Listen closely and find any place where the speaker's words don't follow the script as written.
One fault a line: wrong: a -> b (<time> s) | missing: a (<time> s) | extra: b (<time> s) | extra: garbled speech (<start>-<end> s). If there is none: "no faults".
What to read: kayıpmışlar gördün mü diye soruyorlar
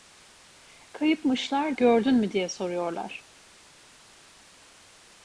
no faults